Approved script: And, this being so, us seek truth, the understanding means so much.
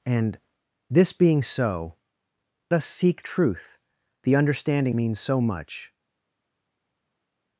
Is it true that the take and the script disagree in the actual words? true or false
false